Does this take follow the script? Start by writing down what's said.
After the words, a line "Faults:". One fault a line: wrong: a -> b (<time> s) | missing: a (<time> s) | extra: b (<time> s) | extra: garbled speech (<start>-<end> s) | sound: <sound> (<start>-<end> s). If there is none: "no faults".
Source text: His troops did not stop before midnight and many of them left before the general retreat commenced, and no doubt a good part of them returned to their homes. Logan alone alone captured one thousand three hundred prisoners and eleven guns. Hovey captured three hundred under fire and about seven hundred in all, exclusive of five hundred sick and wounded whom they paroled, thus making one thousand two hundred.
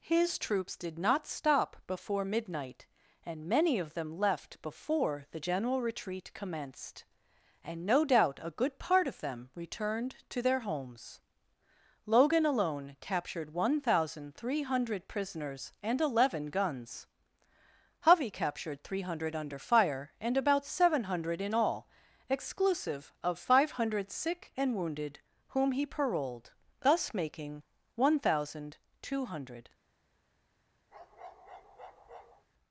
His troops did not stop before midnight and many of them left before the general retreat commenced, and no doubt a good part of them returned to their homes. Logan alone captured one thousand three hundred prisoners and eleven guns. Hovey captured three hundred under fire and about seven hundred in all, exclusive of five hundred sick and wounded whom he paroled, thus making one thousand two hundred.
Faults:
missing: alone (13.0 s)
wrong: they -> he (25.7 s)
sound: bark (30.9-32.4 s)